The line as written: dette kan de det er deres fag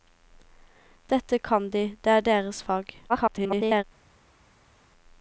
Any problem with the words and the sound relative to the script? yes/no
yes